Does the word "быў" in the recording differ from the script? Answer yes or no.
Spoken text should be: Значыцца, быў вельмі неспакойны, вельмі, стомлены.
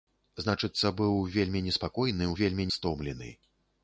no